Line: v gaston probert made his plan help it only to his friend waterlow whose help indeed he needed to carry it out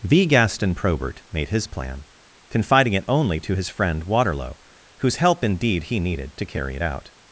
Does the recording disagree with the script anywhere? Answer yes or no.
yes